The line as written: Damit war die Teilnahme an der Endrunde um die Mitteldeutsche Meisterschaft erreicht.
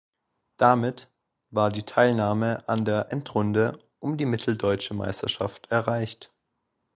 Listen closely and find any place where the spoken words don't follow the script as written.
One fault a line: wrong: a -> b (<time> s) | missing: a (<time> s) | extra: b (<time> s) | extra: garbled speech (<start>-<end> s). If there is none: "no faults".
no faults